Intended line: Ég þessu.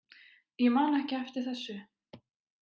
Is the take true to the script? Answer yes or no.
no